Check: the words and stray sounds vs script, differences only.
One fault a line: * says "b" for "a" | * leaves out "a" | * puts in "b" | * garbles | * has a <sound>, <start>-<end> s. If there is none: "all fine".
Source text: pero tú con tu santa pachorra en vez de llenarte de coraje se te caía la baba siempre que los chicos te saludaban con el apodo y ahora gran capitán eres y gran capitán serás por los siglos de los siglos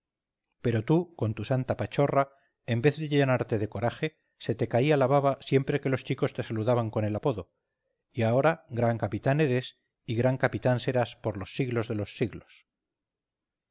all fine